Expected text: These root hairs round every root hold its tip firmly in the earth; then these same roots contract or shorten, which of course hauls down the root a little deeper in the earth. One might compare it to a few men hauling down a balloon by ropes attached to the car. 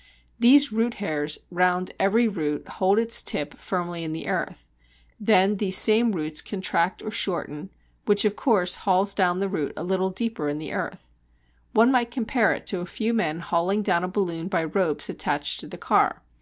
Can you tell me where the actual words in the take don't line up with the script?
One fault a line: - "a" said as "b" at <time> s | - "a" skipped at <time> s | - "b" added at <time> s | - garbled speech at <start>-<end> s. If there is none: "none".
none